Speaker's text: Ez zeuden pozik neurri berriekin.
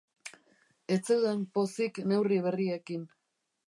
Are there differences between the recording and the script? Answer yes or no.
no